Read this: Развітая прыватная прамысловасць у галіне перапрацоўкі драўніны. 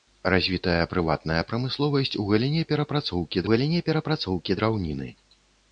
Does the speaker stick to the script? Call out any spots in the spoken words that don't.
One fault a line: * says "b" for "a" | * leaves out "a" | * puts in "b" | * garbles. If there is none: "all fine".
* puts in "галіне перапрацоўкі"